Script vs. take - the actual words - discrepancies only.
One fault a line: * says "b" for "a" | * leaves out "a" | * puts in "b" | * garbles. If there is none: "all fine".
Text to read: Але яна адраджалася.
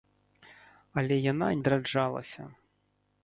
all fine